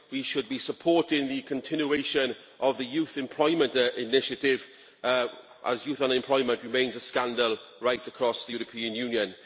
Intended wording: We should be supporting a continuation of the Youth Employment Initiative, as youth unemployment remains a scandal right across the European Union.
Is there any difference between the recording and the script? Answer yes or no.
yes